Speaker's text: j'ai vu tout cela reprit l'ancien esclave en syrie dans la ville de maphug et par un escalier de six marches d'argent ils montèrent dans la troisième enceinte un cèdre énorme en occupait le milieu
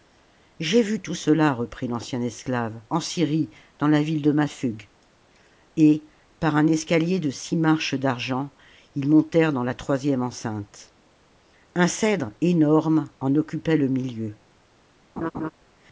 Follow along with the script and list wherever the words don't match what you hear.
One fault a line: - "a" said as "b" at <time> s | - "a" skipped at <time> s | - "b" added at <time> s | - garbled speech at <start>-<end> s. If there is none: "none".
none